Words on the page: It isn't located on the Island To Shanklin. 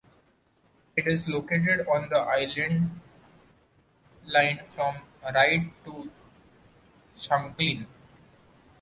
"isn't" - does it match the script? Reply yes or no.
no